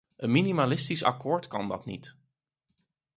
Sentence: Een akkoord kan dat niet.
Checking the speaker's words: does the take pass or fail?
fail